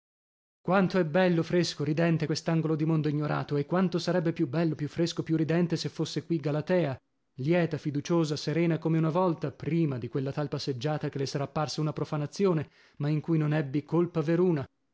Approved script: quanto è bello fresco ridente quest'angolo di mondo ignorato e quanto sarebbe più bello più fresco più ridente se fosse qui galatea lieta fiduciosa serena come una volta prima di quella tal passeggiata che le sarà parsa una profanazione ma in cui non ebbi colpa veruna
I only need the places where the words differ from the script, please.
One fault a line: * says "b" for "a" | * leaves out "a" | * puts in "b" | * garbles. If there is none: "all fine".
all fine